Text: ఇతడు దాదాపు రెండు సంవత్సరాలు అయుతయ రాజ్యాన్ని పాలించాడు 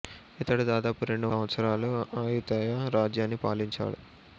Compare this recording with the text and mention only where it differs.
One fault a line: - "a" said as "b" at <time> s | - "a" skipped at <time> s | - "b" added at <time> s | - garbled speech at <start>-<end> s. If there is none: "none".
none